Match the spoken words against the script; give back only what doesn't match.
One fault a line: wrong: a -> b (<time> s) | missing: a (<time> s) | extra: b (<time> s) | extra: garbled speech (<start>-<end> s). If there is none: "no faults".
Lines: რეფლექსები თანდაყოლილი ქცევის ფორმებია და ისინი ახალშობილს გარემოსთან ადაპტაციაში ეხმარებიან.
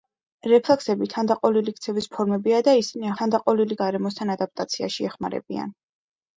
wrong: ახალშობილს -> თანდაყოლილი (3.2 s)